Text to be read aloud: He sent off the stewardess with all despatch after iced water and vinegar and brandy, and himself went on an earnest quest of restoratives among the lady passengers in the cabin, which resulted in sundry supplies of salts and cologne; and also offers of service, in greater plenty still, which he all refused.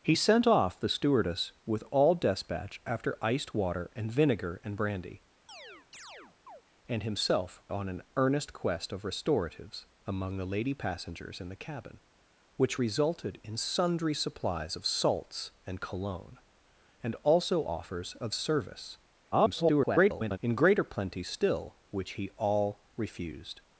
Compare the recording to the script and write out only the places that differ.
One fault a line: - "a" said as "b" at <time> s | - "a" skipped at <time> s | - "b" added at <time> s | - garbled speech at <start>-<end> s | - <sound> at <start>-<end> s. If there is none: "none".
- chirp at 5.5-6.6 s
- "went" skipped at 7.6 s
- garbled speech at 19.3-20.4 s